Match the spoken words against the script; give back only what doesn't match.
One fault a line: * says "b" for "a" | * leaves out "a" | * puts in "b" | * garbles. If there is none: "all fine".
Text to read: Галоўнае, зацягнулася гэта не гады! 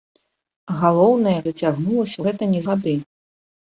all fine